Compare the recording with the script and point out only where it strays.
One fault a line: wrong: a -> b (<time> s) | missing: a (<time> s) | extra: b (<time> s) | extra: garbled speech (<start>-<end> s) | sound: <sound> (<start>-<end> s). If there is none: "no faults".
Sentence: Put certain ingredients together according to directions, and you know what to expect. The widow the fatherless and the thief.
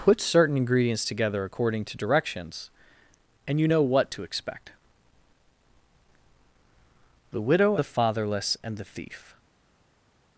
no faults